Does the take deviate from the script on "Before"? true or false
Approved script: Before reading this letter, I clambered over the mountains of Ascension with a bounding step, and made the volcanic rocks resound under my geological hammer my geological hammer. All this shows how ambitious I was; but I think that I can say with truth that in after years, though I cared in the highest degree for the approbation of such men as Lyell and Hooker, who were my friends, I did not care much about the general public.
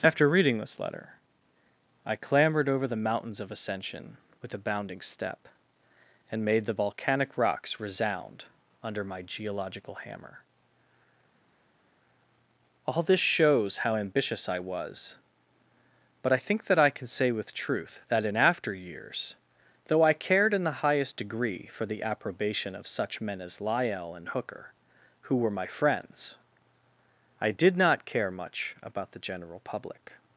true